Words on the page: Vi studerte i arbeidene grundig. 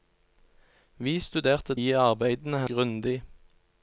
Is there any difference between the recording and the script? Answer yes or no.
no